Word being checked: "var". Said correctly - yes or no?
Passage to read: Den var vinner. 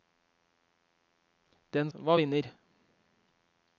yes